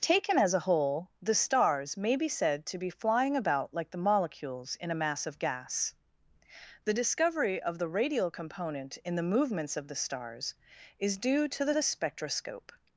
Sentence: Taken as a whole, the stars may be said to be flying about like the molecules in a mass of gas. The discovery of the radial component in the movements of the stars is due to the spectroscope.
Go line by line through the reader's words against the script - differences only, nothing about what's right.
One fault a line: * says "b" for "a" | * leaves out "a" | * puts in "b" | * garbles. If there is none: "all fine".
* puts in "the"